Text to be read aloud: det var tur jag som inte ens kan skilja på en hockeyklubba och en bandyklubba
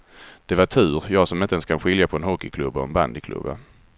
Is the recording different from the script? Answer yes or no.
no